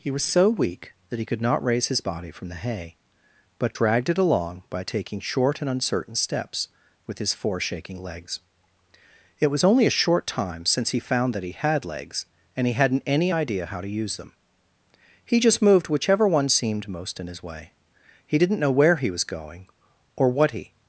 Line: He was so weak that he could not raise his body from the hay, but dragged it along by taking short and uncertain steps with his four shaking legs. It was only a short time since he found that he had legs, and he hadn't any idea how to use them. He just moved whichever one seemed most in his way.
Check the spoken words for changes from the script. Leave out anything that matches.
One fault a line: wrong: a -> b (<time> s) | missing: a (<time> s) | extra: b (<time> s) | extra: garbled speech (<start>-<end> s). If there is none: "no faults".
extra: He didn't know where he was going or what he (18.3 s)